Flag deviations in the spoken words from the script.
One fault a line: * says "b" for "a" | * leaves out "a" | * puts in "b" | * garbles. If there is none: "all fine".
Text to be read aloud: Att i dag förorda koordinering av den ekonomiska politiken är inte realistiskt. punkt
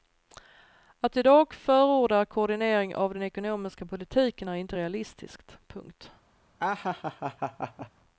all fine